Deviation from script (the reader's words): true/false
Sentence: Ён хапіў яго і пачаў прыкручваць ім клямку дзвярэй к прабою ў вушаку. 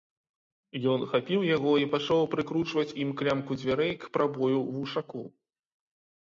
false